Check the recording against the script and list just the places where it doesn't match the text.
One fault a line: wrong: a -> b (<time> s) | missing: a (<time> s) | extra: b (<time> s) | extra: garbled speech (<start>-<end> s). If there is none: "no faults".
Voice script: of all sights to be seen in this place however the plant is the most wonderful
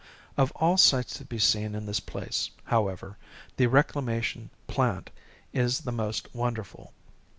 extra: reclamation (3.7 s)